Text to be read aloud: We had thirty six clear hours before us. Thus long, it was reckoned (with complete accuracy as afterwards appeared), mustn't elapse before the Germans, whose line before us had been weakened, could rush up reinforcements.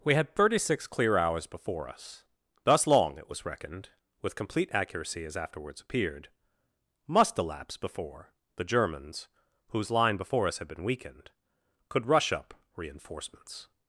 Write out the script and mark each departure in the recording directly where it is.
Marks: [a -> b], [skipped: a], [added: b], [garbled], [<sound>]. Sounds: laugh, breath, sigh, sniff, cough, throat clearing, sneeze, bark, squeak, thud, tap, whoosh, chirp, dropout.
We had thirty six clear hours before us. Thus long, it was reckoned (with complete accuracy as afterwards appeared), [mustn't -> must] elapse before the Germans, whose line before us had been weakened, could rush up reinforcements.